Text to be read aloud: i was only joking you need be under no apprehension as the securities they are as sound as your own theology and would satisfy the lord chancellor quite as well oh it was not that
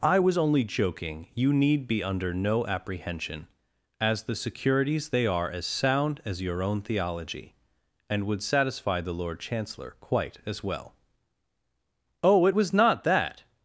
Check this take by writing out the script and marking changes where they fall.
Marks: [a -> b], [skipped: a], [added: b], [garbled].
i was only joking you need be under no apprehension as the securities they are as sound as your own theology and would satisfy the lord chancellor quite as well oh it was not that